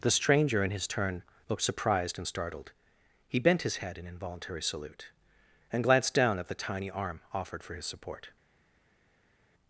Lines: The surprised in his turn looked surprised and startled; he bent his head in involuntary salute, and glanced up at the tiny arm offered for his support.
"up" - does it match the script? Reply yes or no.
no